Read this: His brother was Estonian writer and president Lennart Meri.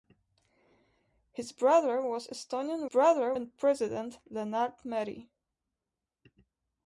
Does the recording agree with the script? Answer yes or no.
no